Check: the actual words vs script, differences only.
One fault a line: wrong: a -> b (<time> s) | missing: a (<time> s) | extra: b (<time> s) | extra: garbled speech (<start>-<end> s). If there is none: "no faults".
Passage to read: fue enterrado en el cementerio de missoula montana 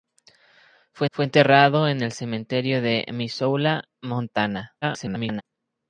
extra: fue (1.1 s)
extra: garbled speech (4.8-5.4 s)